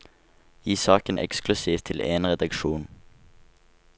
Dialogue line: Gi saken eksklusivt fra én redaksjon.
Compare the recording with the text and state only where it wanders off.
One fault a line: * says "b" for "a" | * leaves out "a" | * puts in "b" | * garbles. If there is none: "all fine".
* says "til" for "fra"